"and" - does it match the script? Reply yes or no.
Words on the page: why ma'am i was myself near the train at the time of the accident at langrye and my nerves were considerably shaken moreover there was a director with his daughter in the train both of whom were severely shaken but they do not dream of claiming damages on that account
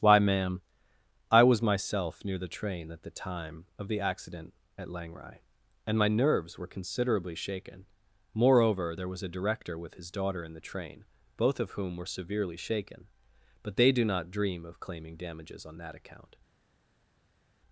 yes